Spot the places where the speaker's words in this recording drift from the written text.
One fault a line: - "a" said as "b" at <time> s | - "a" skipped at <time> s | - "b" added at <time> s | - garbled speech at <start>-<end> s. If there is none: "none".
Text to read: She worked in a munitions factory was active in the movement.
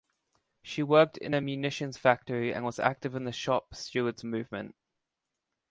- "and" added at 2.5 s
- "shop stewards" added at 3.3 s